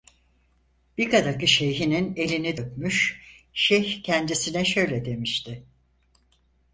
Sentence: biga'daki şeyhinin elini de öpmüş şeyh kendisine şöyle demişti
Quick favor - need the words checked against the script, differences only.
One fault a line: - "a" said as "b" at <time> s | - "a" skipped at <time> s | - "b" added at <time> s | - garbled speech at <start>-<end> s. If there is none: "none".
- "de" skipped at 2.6 s